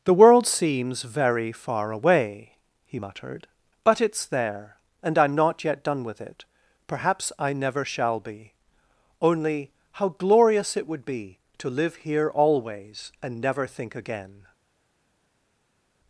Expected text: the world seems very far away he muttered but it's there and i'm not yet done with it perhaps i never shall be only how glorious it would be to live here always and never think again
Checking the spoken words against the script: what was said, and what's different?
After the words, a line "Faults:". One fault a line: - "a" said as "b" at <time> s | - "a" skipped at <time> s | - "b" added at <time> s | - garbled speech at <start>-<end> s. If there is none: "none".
the world seems very far away he muttered but it's there and i'm not yet done with it perhaps i never shall be only how glorious it would be to live here always and never think again
Faults:
none